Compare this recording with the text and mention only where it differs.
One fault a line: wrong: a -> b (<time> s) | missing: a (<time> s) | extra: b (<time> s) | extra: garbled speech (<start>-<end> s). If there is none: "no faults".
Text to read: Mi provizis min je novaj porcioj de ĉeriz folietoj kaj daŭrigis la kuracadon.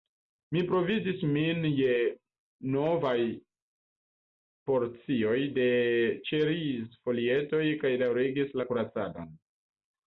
no faults